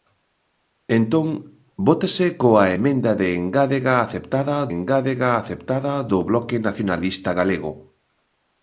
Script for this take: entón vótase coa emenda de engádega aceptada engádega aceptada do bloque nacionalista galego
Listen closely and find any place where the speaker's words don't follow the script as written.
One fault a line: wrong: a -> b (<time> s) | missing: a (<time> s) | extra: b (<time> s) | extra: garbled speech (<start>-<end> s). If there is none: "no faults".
no faults